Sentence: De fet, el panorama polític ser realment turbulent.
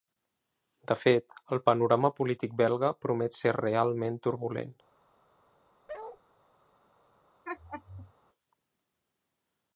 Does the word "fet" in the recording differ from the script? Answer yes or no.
no